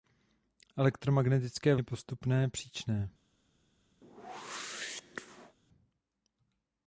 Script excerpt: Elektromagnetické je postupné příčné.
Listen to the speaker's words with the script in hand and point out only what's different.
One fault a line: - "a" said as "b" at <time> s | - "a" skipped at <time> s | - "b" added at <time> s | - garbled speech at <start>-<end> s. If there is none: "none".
none